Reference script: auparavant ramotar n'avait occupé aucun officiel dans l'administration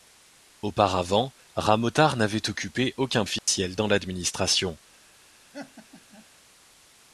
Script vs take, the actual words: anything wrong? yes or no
no